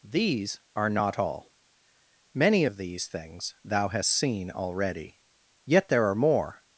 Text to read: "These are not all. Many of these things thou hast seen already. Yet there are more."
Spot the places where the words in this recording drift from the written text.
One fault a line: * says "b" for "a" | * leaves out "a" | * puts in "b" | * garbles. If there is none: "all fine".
all fine